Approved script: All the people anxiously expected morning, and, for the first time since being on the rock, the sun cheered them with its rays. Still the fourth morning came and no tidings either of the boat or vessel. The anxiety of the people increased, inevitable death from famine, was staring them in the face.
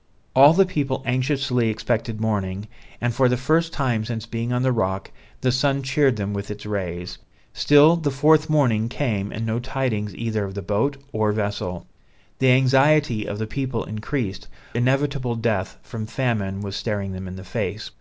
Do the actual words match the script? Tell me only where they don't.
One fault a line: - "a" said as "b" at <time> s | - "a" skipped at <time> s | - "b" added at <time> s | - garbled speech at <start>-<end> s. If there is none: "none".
none